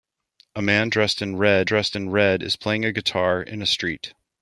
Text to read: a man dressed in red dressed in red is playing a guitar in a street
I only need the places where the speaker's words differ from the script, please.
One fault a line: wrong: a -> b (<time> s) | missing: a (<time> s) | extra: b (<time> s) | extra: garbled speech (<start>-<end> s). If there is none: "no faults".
no faults